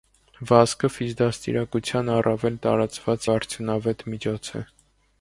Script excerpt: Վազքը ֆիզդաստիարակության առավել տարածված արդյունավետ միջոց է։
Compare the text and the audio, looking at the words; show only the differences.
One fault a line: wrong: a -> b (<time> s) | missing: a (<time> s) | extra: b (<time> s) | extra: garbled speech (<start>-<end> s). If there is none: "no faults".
no faults